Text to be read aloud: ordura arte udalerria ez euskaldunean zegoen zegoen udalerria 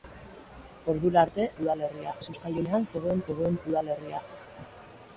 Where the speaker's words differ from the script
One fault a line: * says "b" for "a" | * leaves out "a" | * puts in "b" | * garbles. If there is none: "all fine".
all fine